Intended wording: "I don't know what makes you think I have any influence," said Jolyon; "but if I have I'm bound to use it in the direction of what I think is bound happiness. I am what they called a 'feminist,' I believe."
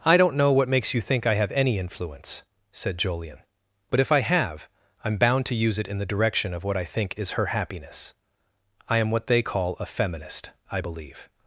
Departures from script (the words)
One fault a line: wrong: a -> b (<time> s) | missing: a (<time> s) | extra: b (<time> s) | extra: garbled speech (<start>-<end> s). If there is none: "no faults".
wrong: bound -> her (7.3 s)
wrong: called -> call (9.4 s)